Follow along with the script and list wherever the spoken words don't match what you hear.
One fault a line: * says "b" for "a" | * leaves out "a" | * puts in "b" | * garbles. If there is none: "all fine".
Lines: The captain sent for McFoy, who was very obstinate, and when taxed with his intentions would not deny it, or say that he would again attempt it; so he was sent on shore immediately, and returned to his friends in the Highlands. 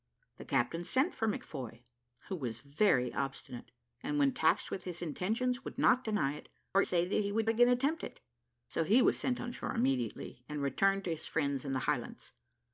all fine